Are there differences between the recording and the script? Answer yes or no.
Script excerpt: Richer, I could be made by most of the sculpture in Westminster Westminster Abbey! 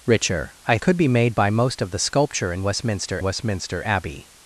no